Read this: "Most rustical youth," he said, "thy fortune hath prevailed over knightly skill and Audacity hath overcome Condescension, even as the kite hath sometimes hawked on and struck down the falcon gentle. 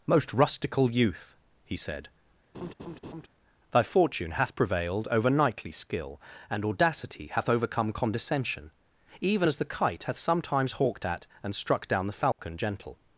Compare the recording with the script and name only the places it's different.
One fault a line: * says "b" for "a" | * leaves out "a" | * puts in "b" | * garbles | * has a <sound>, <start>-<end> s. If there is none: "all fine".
* has a laugh, 2.5-3.3 s
* says "at" for "on"
* has a dropout, 12.3-12.4 s